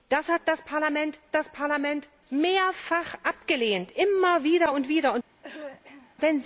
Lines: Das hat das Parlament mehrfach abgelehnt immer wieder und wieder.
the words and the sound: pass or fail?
fail